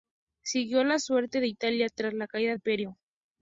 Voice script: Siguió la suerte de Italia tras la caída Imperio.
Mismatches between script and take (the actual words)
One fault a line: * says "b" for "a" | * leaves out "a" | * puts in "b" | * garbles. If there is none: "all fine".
all fine